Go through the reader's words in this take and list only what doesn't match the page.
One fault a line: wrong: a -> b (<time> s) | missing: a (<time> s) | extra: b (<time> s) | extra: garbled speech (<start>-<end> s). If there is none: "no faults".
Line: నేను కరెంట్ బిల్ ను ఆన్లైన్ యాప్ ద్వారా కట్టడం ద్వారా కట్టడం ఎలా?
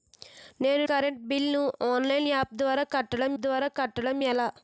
no faults